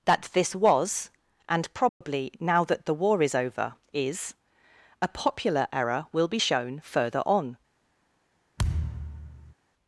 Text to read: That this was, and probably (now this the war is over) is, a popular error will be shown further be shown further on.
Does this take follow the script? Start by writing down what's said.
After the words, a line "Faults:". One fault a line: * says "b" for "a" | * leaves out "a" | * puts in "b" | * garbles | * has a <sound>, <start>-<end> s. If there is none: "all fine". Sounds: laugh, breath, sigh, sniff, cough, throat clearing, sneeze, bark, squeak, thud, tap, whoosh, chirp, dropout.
That this was, and probably (now that the war is over) is, a popular error will be shown further on.
Faults:
* has a dropout, 1.9-2.0 s
* says "that" for "this"
* leaves out "be shown further"
* has a thud, 8.6-9.5 s